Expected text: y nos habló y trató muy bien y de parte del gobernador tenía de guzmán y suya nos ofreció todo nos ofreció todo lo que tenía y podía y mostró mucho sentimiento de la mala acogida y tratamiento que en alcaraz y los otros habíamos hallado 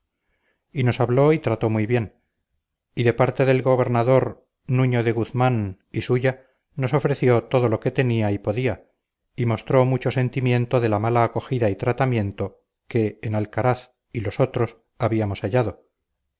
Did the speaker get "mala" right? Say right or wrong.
right